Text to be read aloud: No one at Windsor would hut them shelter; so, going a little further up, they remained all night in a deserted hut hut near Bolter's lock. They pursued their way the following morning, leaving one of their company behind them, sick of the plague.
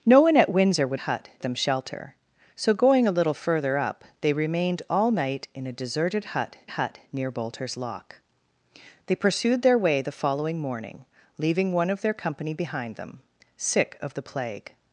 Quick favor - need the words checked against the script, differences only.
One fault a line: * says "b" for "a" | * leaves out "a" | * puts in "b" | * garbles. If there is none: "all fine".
all fine